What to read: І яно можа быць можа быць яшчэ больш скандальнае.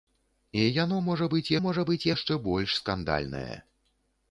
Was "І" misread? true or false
false